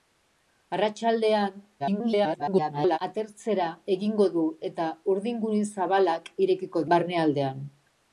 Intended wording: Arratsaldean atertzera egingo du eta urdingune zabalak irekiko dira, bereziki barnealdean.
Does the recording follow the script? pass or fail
fail